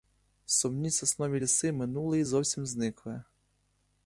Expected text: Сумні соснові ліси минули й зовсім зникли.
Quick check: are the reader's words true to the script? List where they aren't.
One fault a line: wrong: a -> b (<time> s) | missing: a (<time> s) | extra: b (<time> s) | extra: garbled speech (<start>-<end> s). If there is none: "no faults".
no faults